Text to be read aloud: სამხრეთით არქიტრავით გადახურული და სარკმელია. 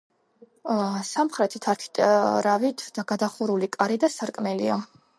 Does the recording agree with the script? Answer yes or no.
no